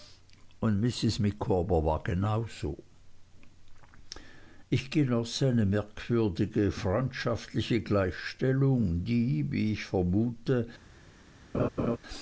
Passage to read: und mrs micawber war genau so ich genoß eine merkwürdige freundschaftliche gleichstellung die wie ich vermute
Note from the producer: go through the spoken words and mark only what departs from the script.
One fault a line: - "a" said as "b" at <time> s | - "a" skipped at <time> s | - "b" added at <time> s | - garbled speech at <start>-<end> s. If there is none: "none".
none